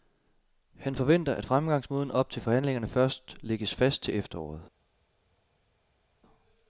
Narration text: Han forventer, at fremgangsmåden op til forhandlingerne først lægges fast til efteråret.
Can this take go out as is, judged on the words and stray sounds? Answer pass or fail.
pass